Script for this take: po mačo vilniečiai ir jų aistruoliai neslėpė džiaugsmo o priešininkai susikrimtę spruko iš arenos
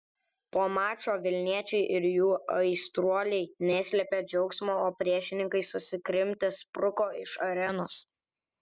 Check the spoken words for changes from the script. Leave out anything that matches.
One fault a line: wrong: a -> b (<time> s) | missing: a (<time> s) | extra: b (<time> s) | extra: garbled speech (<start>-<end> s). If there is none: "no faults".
no faults